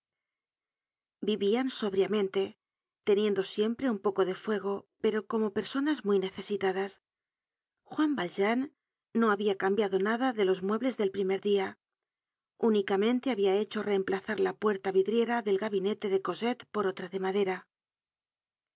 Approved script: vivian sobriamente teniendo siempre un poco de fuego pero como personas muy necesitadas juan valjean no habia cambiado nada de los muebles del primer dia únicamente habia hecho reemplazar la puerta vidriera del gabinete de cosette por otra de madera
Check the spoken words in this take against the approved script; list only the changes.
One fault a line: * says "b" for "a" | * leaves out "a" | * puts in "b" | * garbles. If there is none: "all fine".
all fine